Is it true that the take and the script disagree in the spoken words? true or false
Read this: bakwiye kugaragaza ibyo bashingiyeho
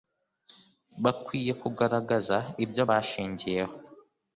false